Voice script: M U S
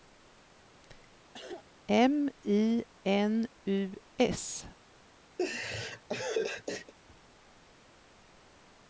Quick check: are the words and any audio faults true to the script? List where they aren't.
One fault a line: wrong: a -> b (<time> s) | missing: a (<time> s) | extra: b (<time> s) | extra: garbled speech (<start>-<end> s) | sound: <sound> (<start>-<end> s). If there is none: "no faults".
sound: cough (1.3-1.7 s)
extra: I N (2.4 s)
sound: laugh (5.4-6.9 s)